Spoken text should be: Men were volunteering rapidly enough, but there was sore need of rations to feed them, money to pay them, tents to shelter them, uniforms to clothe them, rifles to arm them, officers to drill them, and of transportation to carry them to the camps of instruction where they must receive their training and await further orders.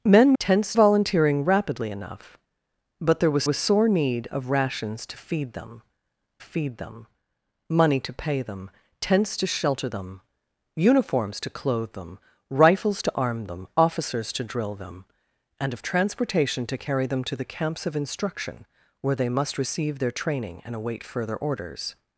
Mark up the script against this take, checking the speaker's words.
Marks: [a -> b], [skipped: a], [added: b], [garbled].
Men [were -> tents] volunteering rapidly enough, but there was [added: was] sore need of rations to feed them, [added: feed them] money to pay them, tents to shelter them, uniforms to clothe them, rifles to arm them, officers to drill them, and of transportation to carry them to the camps of instruction where they must receive their training and await further orders.